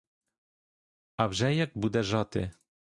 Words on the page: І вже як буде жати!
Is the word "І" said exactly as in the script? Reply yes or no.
no